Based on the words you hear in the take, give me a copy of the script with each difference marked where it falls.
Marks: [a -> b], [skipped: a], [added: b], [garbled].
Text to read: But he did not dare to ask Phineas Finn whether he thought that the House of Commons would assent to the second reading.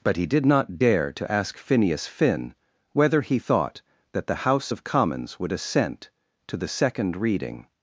But he did not dare to ask Phineas Finn whether he thought that the House of Commons would assent to the second reading.